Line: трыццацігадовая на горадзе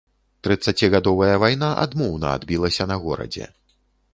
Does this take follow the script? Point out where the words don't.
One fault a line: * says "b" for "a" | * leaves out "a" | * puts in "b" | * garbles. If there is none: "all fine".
* puts in "вайна адмоўна адбілася"